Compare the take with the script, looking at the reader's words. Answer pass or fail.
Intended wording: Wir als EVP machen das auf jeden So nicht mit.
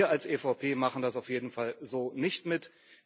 fail